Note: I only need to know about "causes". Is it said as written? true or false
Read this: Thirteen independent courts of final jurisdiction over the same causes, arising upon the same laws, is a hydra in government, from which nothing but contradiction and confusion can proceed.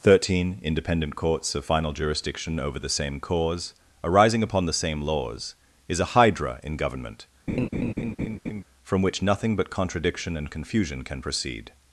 false